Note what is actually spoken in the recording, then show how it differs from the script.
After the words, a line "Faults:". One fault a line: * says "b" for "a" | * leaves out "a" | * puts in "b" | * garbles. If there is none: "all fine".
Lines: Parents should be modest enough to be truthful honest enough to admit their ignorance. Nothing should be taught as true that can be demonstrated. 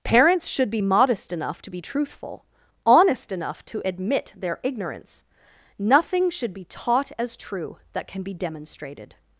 Parents should be modest enough to be truthful honest enough to admit their ignorance. Nothing should be taught as true that can be demonstrated.
Faults:
all fine